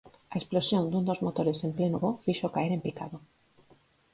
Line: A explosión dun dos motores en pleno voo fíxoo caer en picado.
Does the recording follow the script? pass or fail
pass